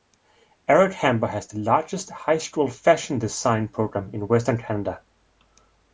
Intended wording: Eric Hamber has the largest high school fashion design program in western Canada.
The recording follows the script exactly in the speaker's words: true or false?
true